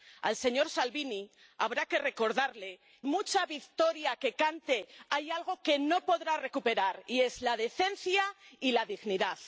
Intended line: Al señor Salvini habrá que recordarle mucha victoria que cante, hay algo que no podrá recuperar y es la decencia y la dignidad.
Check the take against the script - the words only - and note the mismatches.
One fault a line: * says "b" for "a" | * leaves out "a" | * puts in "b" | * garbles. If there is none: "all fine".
all fine